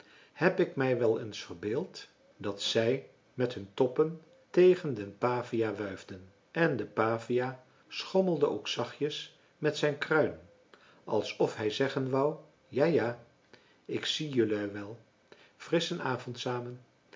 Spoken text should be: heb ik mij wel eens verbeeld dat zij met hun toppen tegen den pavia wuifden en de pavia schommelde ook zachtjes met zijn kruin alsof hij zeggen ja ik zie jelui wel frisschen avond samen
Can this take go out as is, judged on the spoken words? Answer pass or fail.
fail